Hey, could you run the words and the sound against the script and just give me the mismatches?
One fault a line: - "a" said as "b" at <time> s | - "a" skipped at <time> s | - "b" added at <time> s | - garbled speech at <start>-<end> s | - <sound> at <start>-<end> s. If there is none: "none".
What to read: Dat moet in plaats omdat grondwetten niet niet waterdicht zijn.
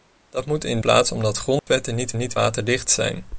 - dropout at 1.6-1.7 s